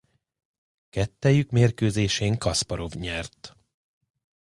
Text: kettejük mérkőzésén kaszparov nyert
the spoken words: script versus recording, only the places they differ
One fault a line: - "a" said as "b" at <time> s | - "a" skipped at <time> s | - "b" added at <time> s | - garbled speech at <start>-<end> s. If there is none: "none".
none